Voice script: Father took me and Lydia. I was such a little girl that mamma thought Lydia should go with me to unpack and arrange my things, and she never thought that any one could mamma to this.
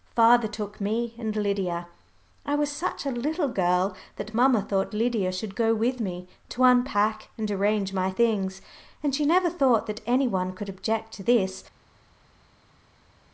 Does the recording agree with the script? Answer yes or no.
no